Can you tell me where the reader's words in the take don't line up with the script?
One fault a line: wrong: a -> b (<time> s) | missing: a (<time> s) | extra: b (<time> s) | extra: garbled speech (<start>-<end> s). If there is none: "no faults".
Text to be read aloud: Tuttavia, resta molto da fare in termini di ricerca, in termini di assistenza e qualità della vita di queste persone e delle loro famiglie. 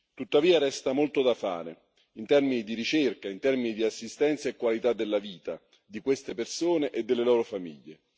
no faults